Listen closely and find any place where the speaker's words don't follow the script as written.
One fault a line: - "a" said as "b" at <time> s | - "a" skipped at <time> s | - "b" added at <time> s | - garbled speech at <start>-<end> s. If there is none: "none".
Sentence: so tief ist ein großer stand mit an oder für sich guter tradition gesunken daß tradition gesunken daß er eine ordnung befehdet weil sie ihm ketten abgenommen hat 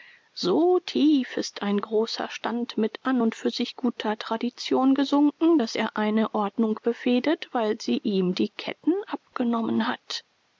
- "oder" said as "und" at 3.2 s
- "tradition gesunken daß" skipped at 5.7 s
- "die" added at 8.3 s